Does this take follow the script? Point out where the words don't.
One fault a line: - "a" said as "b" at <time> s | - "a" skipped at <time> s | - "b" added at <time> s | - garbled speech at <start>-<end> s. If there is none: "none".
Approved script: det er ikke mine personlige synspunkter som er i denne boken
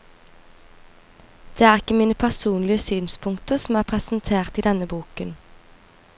- "presentert" added at 3.8 s